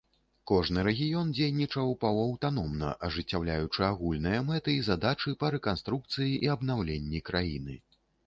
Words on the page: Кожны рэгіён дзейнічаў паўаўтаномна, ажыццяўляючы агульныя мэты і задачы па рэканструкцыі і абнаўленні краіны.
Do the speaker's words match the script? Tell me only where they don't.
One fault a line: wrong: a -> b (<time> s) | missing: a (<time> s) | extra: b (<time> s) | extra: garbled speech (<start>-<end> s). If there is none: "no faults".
no faults